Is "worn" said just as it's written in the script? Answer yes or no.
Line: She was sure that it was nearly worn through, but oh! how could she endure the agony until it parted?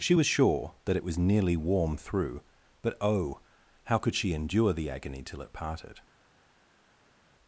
no